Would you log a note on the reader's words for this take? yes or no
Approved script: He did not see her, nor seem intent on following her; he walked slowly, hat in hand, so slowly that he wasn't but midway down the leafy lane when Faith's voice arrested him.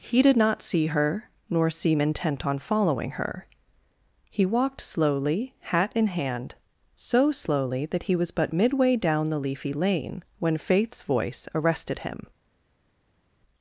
yes